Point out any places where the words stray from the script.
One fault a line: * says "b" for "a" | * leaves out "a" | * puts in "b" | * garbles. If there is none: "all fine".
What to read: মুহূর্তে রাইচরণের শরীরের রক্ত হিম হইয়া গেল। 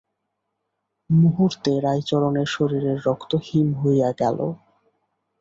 all fine